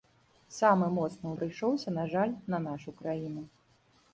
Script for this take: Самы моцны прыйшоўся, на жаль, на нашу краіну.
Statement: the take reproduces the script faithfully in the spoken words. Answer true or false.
true